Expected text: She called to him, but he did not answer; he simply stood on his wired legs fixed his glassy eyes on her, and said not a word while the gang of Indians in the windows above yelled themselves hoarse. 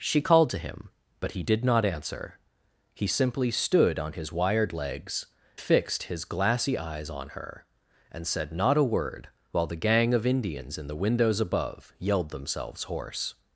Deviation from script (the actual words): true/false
false